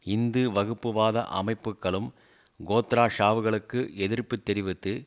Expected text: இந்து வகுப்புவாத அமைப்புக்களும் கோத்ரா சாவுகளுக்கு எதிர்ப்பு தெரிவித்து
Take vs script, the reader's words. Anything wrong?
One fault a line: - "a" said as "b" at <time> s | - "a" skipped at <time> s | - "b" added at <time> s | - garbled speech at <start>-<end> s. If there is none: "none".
none